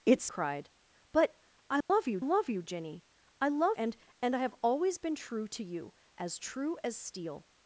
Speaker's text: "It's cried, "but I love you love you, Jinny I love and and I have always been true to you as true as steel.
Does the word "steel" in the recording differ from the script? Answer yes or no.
no